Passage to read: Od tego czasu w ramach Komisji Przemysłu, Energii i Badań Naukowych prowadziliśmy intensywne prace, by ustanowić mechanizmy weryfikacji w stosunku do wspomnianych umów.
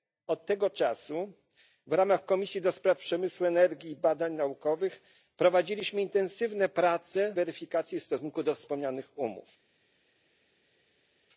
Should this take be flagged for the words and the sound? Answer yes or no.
yes